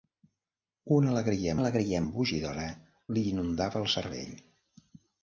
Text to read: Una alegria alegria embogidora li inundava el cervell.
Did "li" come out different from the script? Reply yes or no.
no